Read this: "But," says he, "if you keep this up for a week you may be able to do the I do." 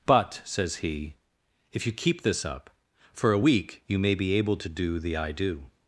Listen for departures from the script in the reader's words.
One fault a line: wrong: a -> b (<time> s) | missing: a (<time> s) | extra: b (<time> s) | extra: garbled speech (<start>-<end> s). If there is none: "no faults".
no faults